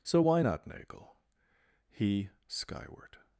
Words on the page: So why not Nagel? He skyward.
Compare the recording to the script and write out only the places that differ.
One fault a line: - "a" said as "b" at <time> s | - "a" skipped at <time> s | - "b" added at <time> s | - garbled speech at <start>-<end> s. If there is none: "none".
none